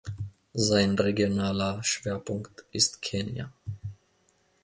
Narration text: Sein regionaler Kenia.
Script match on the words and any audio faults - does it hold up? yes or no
no